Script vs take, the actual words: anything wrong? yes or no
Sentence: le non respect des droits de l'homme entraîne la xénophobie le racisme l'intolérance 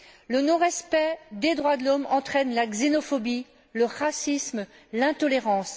no